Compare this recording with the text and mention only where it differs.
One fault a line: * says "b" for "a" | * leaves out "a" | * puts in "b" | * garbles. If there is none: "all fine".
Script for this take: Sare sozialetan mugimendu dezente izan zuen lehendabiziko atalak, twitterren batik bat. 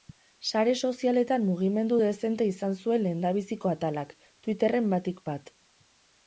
all fine